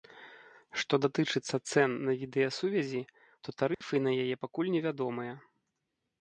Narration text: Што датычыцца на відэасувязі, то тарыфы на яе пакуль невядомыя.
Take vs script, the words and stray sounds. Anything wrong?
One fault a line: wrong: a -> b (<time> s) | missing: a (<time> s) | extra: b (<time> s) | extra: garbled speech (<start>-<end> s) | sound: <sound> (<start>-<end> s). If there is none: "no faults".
extra: цэн (1.7 s)
sound: dropout (3.7-3.8 s)